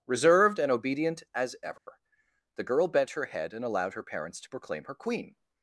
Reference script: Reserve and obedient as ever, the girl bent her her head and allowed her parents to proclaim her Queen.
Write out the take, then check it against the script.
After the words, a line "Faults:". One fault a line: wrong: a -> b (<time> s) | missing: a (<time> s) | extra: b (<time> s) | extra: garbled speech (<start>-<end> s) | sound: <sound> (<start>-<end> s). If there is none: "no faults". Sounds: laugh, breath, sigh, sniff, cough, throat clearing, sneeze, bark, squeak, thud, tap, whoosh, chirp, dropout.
Reserved and obedient as ever, the girl bent her head and allowed her parents to proclaim her Queen.
Faults:
wrong: Reserve -> Reserved (0.1 s)
sound: dropout (1.8-1.9 s)
missing: her (3.2 s)